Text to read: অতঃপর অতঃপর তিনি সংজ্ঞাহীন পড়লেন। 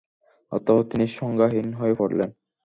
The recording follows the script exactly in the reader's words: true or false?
false